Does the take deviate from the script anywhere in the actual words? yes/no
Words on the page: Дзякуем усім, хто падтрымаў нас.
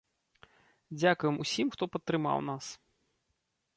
no